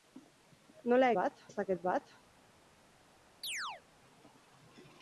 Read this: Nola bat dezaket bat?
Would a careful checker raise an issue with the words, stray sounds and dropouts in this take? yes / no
yes